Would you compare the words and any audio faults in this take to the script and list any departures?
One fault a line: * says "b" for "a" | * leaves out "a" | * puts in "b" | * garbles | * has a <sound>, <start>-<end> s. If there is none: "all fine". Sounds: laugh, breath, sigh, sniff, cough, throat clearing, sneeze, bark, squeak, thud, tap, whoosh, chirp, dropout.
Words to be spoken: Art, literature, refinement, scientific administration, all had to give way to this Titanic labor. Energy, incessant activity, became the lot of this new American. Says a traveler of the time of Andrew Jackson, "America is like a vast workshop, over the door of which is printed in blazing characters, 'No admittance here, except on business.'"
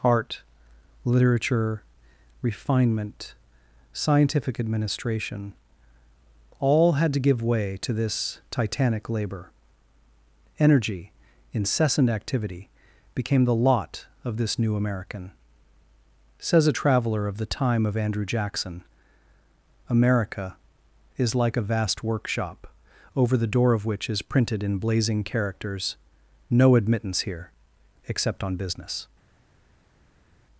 all fine